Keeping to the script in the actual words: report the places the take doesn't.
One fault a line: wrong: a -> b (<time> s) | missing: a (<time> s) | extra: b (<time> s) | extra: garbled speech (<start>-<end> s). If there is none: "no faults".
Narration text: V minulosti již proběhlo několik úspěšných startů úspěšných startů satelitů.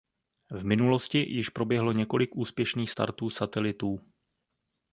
missing: úspěšných startů (3.3 s)